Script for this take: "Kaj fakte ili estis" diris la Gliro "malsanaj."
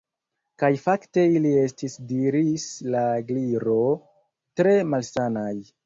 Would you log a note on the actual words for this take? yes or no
yes